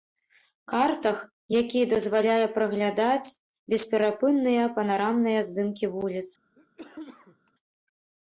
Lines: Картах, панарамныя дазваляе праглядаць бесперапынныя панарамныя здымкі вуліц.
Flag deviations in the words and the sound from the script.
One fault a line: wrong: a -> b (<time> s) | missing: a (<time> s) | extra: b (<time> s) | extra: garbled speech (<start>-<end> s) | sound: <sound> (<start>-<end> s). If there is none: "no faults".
wrong: панарамныя -> які (1.6 s)
sound: cough (6.6-7.5 s)